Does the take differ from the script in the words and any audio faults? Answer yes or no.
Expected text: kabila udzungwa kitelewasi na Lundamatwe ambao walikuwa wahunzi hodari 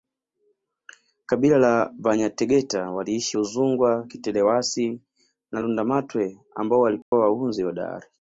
yes